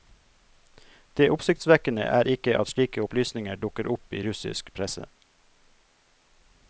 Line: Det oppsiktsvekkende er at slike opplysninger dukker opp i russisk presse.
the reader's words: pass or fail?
fail